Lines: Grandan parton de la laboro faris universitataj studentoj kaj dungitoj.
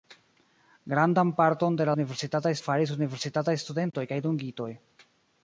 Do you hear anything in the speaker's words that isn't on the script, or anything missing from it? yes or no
yes